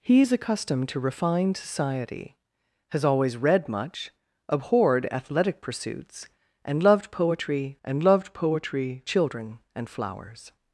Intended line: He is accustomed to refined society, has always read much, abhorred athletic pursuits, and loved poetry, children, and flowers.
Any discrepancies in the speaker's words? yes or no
yes